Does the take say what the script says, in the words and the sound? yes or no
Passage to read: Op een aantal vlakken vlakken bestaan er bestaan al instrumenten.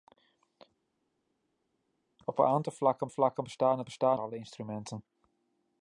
yes